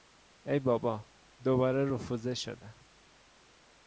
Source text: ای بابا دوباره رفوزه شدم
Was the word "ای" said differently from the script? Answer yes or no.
no